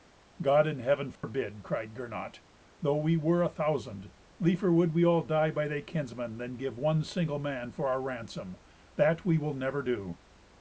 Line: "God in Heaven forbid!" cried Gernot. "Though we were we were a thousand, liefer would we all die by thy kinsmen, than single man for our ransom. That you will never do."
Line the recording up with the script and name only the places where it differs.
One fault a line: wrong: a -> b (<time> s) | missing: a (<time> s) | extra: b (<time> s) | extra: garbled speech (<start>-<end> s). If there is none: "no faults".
missing: we were (3.4 s)
extra: give one (6.6 s)
wrong: you -> we (9.2 s)